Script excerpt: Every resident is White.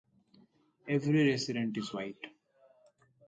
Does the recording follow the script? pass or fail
pass